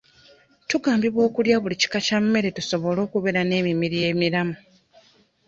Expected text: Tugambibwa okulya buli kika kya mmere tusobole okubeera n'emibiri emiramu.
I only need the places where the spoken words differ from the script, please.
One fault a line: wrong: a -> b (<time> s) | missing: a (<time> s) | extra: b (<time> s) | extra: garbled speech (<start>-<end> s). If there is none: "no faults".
no faults